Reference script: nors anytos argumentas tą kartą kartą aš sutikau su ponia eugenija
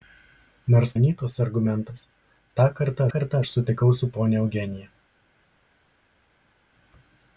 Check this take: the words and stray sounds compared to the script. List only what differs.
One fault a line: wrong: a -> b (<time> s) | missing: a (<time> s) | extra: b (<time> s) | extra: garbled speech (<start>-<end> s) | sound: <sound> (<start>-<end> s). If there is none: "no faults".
no faults